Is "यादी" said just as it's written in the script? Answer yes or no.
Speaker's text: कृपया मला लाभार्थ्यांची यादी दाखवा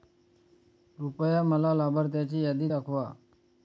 yes